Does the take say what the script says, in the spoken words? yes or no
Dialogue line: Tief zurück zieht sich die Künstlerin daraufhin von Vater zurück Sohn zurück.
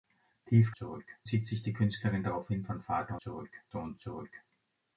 yes